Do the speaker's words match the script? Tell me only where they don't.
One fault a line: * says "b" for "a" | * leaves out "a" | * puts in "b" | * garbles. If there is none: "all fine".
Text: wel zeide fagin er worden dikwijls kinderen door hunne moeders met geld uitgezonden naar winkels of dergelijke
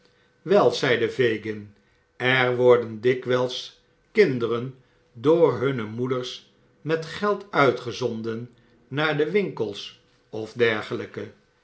* puts in "de"